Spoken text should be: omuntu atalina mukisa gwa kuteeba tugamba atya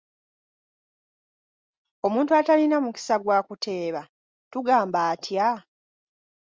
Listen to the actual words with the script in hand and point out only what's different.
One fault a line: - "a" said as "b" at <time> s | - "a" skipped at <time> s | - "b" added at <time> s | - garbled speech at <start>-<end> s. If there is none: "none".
none